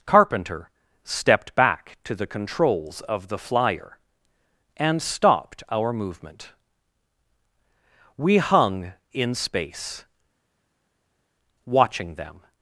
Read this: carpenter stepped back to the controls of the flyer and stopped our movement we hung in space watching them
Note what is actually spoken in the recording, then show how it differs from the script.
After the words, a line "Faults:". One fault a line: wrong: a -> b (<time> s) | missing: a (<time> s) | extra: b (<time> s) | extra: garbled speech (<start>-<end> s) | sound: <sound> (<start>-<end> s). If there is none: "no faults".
carpenter stepped back to the controls of the flyer and stopped our movement we hung in space watching them
Faults:
no faults